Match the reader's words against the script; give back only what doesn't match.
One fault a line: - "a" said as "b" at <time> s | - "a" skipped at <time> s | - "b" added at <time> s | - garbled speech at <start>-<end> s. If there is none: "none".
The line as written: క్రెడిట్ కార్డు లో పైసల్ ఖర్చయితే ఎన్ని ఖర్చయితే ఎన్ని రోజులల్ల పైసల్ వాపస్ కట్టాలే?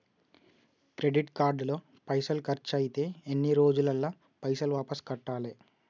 - "ఖర్చయితే ఎన్ని" skipped at 3.5 s